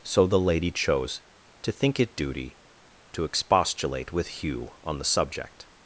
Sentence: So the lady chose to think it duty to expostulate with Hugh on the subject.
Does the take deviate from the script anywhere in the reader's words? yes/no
no